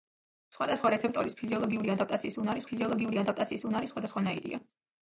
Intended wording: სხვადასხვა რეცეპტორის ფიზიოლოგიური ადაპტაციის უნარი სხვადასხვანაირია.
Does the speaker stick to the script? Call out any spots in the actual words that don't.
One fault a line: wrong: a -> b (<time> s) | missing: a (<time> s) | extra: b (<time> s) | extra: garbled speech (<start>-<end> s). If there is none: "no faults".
extra: ფიზიოლოგიური ადაპტაციის უნარი (2.7 s)